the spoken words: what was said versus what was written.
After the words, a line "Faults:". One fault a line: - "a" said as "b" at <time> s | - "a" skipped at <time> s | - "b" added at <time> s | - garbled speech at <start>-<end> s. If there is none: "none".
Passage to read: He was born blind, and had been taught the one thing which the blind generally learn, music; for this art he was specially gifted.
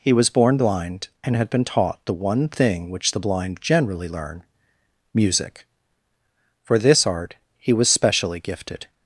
He was born blind, and had been taught the one thing which the blind generally learn, music; for this art he was specially gifted.
Faults:
none